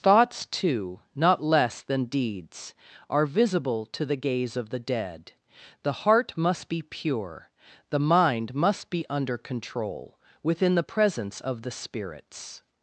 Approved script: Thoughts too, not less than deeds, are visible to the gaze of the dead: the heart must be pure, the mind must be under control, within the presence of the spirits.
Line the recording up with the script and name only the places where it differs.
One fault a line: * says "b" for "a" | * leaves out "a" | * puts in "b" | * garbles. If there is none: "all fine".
all fine